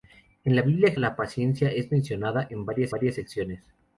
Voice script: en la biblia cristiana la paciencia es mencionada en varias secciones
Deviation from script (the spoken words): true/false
true